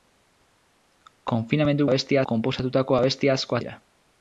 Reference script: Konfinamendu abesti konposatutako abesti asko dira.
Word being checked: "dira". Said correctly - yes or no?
yes